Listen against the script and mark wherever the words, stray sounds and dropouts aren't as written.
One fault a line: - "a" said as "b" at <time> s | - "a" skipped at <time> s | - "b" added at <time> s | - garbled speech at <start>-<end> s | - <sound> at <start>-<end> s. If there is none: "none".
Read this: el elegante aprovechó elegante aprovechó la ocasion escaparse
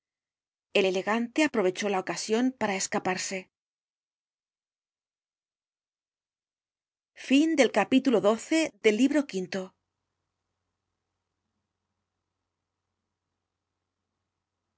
- "elegante aprovechó" skipped at 1.9 s
- "para" added at 2.6 s